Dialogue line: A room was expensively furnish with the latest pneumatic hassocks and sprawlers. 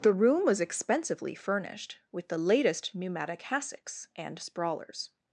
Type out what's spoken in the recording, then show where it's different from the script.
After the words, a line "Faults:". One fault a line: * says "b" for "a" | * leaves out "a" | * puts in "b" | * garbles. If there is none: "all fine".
The room was expensively furnished with the latest pneumatic hassocks and sprawlers.
Faults:
* says "The" for "A"
* says "furnished" for "furnish"